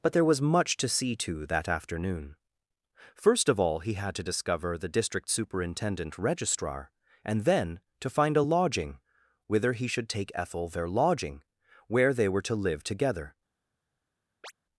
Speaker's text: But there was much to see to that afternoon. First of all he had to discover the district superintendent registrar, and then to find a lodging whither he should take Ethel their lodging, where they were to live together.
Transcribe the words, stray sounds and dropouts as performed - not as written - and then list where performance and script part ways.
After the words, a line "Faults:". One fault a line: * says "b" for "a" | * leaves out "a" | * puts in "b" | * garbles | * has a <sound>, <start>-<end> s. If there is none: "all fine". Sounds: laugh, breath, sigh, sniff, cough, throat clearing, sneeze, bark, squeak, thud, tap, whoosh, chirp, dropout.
But there was much to see to that afternoon. First of all he had to discover the district superintendent registrar, and then to find a lodging whither he should take Ethel their lodging, where they were to live together.
Faults:
* has a chirp, 14.4-14.5 s